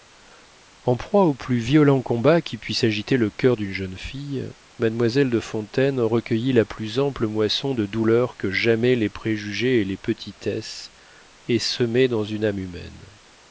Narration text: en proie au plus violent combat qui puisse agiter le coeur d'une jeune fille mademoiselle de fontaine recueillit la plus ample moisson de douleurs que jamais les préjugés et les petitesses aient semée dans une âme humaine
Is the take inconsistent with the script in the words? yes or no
no